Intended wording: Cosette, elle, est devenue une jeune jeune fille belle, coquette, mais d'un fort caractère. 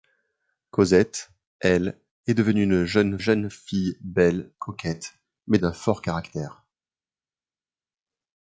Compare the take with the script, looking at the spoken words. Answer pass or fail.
pass